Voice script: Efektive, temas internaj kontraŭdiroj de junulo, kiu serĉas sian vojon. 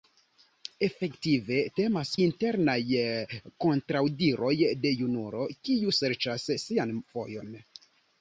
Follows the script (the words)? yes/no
yes